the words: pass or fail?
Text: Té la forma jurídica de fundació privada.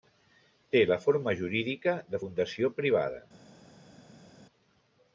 pass